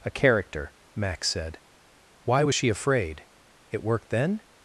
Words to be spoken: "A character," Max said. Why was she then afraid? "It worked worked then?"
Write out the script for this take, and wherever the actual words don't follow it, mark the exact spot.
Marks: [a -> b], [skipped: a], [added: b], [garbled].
"A character," Max said. Why was she [skipped: then] afraid? "It worked [skipped: worked] then?"